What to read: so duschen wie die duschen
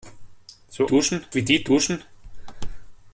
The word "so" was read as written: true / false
true